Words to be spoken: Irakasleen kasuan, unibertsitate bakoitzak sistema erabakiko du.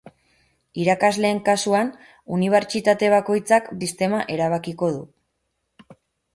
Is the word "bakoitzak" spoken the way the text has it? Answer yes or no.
yes